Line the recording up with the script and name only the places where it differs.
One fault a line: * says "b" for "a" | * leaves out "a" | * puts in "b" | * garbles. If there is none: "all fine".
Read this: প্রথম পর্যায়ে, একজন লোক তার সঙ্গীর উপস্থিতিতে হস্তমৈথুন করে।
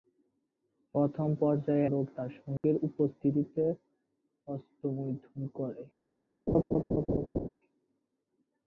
* leaves out "একজন"